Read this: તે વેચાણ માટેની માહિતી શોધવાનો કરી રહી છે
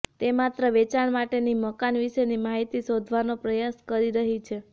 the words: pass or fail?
fail